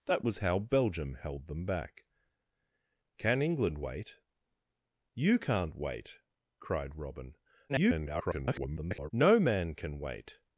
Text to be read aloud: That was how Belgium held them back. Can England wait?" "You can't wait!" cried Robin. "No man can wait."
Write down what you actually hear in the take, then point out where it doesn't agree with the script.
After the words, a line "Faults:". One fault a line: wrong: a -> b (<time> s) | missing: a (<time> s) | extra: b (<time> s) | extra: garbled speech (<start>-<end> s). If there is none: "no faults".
That was how Belgium held them back. Can England wait?" "You can't wait!" cried Robin. [garbled] "No man can wait."
Faults:
extra: garbled speech (7.7-9.1 s)